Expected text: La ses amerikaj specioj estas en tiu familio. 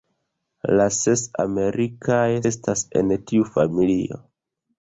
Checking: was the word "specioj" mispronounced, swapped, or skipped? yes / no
yes